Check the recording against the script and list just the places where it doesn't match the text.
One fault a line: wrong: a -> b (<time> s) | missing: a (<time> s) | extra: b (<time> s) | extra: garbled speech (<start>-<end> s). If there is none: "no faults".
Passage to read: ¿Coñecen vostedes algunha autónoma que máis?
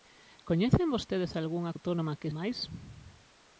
no faults